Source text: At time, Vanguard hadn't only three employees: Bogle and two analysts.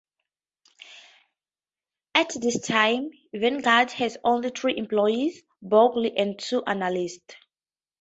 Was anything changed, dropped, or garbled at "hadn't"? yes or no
yes